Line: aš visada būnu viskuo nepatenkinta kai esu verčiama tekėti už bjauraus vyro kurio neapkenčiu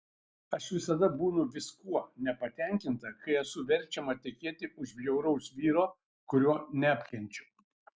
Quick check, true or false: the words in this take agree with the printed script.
true